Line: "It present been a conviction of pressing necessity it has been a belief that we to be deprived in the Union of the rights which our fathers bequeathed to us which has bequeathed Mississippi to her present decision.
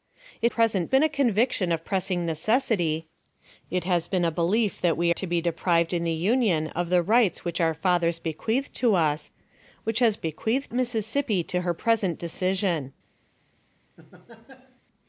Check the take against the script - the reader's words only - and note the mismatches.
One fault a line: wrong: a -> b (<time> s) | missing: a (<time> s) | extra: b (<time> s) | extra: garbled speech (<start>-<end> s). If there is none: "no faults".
no faults